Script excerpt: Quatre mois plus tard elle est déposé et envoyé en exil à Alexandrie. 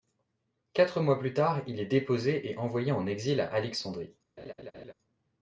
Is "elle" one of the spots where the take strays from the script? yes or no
yes